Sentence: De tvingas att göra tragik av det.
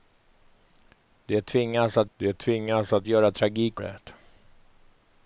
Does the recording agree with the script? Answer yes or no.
no